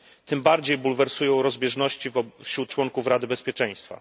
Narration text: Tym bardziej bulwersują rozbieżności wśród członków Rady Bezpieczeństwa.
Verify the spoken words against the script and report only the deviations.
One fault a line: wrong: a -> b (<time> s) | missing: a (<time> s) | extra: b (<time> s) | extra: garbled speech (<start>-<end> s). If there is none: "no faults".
no faults